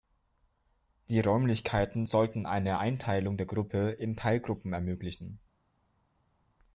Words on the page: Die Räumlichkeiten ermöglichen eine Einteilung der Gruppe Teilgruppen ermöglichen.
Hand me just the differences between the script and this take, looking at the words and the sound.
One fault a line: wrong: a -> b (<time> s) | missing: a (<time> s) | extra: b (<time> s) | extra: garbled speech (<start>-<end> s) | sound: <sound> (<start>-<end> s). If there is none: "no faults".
wrong: ermöglichen -> sollten (2.1 s)
extra: in (3.9 s)